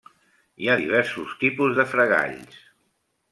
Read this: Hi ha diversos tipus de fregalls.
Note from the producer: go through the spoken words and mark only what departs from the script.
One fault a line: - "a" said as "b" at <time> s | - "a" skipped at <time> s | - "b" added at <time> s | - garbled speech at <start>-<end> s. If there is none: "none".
none